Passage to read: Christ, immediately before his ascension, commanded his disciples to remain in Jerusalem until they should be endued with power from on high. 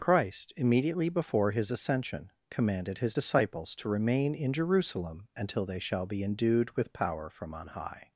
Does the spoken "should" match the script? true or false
false